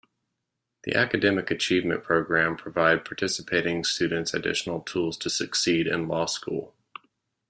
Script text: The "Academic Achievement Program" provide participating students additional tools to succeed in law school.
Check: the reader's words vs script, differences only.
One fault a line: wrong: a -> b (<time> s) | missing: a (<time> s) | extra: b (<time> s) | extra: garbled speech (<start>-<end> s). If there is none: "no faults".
no faults